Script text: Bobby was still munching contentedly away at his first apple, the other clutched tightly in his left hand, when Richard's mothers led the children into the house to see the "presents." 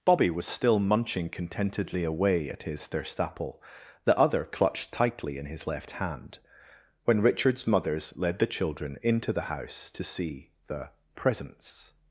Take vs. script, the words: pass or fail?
fail